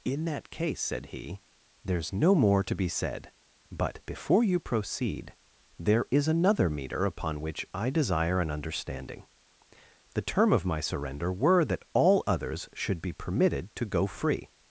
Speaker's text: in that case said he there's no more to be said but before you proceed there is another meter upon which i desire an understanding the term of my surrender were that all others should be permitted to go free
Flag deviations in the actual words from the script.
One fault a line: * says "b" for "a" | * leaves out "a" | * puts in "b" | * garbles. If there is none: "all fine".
all fine